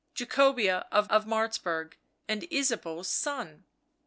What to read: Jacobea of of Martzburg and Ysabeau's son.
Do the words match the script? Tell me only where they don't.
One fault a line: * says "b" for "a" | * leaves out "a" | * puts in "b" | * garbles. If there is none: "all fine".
all fine